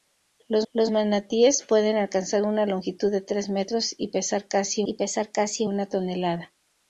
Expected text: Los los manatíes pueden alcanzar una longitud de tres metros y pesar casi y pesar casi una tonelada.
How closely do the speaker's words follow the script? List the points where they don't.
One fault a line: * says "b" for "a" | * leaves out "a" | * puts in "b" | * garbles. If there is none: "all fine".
all fine